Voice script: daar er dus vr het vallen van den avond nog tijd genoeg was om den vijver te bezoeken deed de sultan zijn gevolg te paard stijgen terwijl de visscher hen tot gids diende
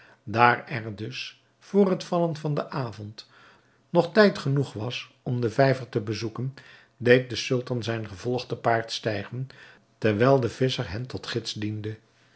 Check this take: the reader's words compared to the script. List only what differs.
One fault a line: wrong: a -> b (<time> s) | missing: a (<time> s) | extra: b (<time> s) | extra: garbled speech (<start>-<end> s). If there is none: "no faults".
no faults